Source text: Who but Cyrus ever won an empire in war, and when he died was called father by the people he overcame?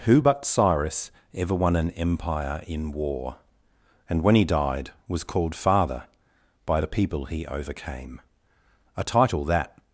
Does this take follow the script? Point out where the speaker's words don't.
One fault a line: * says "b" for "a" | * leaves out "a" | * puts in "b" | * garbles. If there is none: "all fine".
* puts in "a title that"